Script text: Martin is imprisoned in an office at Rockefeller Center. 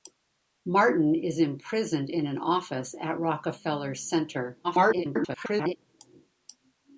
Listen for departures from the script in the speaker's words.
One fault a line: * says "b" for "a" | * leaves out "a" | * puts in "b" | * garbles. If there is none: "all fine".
* garbles